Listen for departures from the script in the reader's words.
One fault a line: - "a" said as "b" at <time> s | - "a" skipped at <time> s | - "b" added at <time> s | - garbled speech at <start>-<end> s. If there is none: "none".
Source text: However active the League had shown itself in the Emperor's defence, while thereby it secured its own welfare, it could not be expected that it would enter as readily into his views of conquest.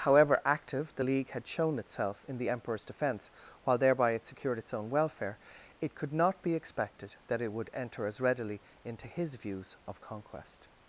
none